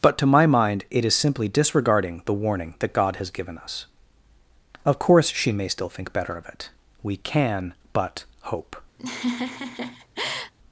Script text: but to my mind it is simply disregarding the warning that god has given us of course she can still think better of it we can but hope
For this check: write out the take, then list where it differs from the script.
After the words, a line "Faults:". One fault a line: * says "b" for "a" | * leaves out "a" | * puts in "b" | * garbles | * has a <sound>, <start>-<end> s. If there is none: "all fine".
but to my mind it is simply disregarding the warning that god has given us of course she may still think better of it we can but hope
Faults:
* says "may" for "can"
* has a laugh, 9.0-10.5 s